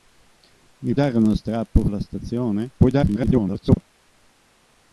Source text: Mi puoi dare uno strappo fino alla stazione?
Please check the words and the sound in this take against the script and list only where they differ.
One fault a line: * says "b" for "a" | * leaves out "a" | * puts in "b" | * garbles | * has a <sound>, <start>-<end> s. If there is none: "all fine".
* leaves out "puoi"
* leaves out "fino"
* garbles